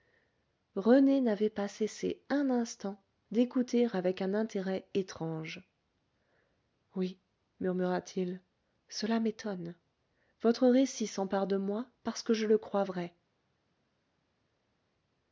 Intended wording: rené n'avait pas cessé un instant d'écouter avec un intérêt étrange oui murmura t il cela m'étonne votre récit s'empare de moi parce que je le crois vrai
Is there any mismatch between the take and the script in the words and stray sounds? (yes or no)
no